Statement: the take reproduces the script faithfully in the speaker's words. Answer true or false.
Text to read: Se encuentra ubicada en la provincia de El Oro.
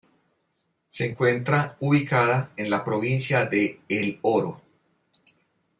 true